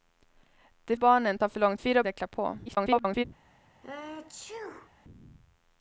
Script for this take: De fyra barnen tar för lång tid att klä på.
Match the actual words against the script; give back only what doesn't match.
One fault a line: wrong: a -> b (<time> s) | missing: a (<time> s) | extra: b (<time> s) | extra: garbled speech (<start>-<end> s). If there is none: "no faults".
missing: fyra (1.0 s)
wrong: tid -> fyra (1.8 s)
extra: garbled speech (2.7-3.2 s)